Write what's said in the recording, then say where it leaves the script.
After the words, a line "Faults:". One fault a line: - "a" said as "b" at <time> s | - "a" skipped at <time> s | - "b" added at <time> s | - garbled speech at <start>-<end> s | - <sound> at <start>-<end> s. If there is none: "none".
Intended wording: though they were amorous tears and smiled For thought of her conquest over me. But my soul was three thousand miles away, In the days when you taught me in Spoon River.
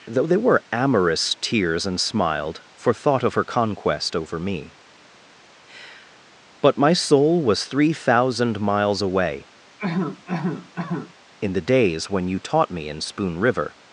though they were amorous tears and smiled For thought of her conquest over me. But my soul was three thousand miles away, In the days when you taught me in Spoon River.
Faults:
- cough at 9.8-11.1 s